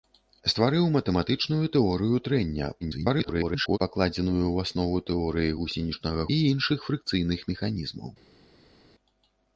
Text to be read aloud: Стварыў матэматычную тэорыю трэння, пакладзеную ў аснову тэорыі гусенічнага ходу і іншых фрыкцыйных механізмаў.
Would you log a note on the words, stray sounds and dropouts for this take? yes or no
yes